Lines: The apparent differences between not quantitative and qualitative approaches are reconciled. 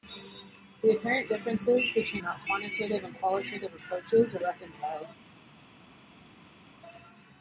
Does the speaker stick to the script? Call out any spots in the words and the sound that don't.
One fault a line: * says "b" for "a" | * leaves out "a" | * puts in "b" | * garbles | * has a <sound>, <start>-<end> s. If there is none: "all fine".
all fine